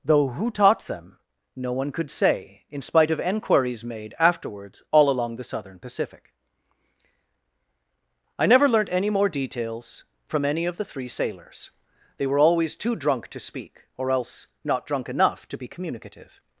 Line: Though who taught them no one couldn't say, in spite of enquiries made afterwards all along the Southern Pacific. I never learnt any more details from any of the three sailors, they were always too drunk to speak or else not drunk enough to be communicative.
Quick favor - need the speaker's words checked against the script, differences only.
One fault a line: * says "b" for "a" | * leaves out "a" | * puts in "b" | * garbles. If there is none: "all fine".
* says "could" for "couldn't"